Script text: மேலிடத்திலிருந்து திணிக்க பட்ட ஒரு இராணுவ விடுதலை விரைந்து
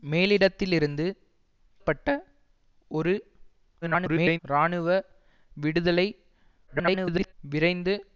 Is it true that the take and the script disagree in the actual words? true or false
true